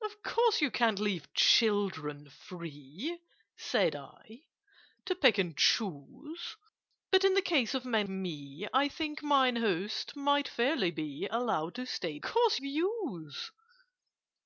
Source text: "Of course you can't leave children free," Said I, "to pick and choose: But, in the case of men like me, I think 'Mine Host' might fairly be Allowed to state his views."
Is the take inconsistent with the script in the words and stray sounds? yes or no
yes